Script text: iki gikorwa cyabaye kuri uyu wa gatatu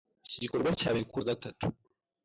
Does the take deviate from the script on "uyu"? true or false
true